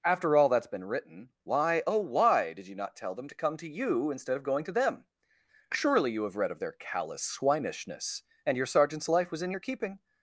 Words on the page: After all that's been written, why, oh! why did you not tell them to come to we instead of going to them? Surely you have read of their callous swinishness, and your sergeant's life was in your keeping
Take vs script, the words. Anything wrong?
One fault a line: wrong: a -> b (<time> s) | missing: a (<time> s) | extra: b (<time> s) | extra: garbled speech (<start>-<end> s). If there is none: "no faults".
wrong: we -> you (3.7 s)